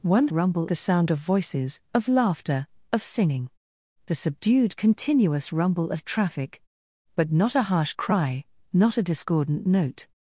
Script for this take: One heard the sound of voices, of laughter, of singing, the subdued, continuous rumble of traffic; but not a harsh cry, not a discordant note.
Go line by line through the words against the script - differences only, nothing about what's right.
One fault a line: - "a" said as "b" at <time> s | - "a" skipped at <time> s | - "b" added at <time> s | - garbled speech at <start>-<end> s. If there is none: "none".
- "heard" said as "rumble" at 0.3 s